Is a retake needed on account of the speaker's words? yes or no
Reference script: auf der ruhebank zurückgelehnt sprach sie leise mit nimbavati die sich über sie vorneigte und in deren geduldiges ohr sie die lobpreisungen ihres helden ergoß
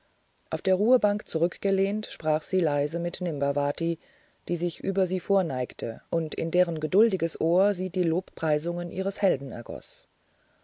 no